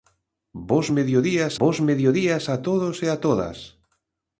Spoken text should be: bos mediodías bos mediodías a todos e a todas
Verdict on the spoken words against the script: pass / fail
pass